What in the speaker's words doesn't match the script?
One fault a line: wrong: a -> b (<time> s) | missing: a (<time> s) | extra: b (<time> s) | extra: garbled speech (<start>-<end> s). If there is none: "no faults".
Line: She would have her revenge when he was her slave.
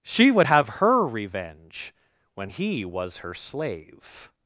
no faults